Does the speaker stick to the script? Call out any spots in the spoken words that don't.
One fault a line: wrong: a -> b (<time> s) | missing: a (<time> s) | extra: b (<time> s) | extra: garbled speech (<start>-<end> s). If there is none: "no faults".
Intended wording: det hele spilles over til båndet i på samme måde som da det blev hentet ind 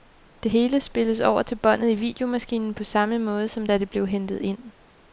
extra: videomaskinen (1.9 s)